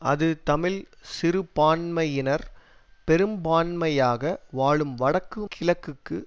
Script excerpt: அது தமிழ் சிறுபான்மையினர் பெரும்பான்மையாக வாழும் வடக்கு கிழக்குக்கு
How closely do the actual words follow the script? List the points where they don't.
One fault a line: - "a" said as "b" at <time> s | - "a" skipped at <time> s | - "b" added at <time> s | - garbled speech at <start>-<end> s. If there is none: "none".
none